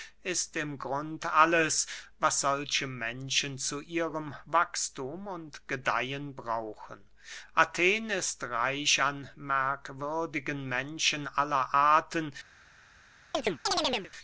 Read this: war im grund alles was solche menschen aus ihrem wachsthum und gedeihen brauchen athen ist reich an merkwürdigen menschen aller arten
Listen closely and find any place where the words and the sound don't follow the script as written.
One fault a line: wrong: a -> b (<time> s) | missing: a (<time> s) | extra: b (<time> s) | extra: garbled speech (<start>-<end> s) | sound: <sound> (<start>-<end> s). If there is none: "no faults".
wrong: war -> ist (0.2 s)
wrong: aus -> zu (3.6 s)
sound: chirp (13.3-14.1 s)